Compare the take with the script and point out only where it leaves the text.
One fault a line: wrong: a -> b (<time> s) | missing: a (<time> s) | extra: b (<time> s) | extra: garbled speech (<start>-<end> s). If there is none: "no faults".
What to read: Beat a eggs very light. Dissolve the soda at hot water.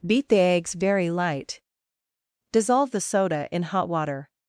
wrong: a -> the (0.3 s)
wrong: at -> in (3.5 s)